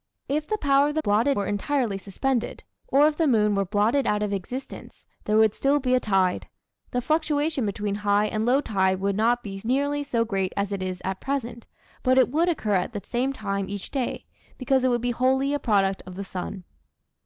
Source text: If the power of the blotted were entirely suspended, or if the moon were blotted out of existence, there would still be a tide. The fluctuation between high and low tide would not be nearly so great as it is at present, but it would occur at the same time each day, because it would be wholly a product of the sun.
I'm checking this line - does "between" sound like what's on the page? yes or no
yes